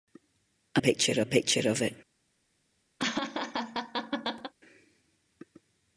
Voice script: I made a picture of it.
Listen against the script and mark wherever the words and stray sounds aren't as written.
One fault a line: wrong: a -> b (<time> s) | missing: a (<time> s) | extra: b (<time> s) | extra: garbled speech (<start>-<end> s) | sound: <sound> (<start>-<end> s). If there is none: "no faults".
wrong: made -> picture (0.8 s)
sound: laugh (3.0-4.5 s)